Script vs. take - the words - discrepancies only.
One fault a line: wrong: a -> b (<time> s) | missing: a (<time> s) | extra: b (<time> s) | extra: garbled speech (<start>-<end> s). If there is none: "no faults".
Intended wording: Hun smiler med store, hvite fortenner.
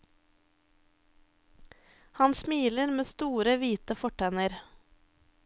wrong: Hun -> Han (2.1 s)